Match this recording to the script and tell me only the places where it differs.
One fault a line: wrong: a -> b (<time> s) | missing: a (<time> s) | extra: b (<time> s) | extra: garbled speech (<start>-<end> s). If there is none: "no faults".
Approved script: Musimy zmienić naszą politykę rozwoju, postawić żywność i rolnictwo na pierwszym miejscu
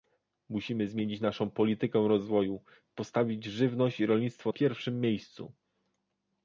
missing: na (4.5 s)